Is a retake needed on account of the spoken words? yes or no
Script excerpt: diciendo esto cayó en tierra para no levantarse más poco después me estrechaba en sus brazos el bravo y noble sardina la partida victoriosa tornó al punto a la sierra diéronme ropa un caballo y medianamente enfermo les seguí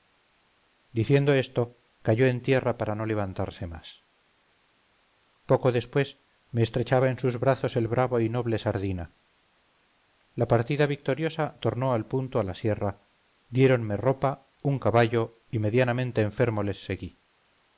no